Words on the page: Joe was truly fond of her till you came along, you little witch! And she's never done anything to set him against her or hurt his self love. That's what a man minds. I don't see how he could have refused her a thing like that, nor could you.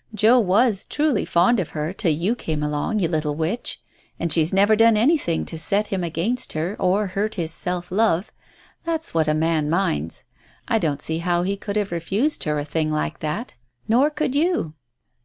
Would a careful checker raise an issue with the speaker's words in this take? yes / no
no